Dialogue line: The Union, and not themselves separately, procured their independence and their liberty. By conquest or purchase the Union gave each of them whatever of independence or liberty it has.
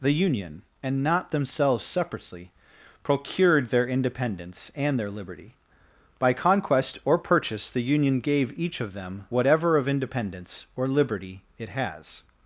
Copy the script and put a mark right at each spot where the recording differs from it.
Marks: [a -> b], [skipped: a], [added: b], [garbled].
The Union, and not themselves separately, procured their independence and their liberty. By conquest or purchase the Union gave each of them whatever of independence or liberty it has.